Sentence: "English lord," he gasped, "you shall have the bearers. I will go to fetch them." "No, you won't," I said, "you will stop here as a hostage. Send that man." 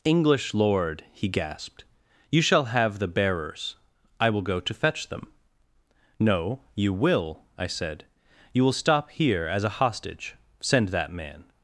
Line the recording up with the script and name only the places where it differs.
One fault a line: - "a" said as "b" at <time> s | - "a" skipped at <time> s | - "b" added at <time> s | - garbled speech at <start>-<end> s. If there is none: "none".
- "won't" said as "will" at 6.9 s